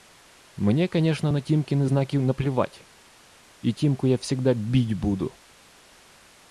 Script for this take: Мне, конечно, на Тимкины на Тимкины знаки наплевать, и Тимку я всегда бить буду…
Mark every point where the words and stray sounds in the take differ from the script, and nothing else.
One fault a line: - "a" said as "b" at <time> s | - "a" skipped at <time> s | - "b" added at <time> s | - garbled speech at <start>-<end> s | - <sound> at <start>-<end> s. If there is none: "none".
- "на Тимкины" skipped at 1.9 s